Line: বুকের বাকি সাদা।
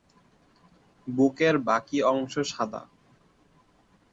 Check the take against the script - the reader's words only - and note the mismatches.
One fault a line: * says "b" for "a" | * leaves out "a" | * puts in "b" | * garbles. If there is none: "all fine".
* puts in "অংশ"